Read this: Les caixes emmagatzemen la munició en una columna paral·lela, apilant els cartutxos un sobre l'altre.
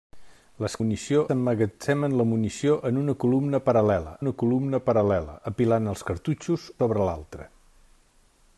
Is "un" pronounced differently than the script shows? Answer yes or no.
yes